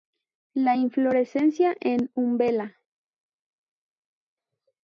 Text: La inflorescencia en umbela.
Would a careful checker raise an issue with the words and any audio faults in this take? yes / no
no